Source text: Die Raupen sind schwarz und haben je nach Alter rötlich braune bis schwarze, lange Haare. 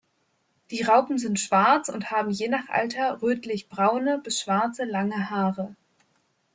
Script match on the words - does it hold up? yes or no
yes